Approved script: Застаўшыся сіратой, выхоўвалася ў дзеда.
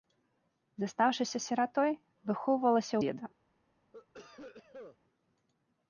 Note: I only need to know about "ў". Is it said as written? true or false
false